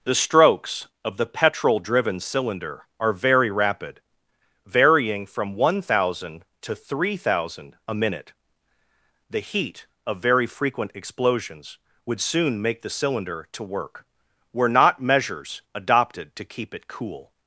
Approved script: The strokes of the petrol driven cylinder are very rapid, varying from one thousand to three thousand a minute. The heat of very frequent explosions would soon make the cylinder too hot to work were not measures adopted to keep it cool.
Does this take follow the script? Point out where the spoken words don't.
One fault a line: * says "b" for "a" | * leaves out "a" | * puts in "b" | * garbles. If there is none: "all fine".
* leaves out "too hot"